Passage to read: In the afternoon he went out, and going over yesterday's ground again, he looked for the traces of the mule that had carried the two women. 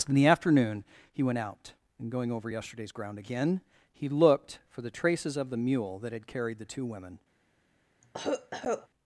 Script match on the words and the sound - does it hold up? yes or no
no